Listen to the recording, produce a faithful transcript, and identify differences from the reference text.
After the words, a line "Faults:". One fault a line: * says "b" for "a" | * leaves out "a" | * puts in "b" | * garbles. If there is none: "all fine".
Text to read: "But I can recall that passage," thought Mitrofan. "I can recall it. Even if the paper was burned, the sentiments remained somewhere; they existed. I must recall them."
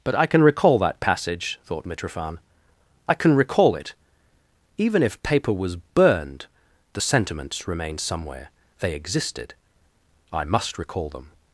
"But I can recall that passage," thought Mitrofan. "I can recall it. Even if paper was burned, the sentiments remained somewhere; they existed. I must recall them."
Faults:
* leaves out "the"